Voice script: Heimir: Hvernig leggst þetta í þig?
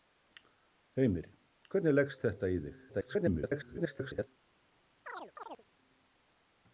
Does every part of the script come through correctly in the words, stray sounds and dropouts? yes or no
no